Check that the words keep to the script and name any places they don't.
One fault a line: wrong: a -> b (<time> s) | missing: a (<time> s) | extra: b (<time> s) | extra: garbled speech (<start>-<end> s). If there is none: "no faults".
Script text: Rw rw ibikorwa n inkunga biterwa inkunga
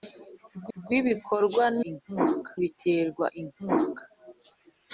no faults